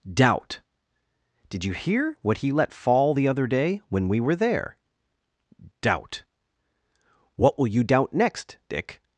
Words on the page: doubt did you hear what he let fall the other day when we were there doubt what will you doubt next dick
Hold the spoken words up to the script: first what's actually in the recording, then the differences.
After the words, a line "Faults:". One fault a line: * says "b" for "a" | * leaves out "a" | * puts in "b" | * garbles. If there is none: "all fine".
doubt did you hear what he let fall the other day when we were there doubt what will you doubt next dick
Faults:
all fine